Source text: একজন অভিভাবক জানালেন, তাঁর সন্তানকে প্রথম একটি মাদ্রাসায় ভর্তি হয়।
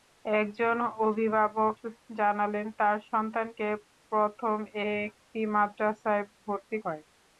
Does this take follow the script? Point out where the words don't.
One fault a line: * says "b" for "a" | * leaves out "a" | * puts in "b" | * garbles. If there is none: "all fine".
all fine